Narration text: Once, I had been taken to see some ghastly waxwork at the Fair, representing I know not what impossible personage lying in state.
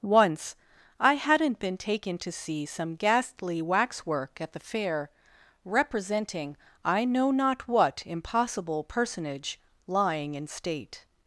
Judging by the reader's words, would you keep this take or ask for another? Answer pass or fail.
fail